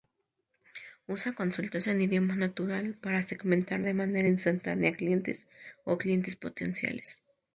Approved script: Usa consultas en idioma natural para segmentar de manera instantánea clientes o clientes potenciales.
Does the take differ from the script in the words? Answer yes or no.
no